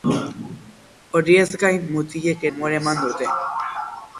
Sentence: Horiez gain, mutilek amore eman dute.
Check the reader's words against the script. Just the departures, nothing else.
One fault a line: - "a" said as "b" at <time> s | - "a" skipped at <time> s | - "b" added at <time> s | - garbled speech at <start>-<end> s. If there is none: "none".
none